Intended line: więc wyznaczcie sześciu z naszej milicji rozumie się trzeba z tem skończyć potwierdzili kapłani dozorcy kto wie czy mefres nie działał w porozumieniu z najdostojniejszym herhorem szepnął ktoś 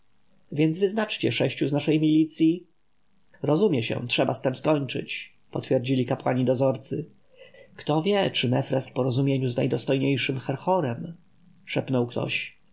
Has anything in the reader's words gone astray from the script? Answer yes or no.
yes